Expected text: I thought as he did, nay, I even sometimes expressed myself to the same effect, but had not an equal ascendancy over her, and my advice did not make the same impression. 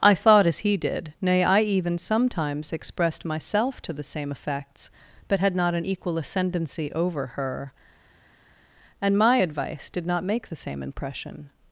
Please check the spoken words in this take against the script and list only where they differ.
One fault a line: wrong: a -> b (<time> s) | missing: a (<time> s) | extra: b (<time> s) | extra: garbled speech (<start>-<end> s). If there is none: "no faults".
wrong: effect -> effects (4.3 s)